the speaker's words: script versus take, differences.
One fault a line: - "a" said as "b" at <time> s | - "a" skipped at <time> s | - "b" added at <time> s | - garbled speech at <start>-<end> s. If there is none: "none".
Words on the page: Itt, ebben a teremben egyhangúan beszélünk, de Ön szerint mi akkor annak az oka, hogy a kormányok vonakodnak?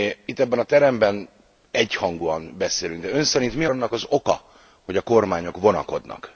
- "akkor" skipped at 3.6 s